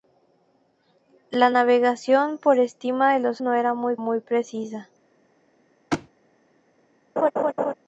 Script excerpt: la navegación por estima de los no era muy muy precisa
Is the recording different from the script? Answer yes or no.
no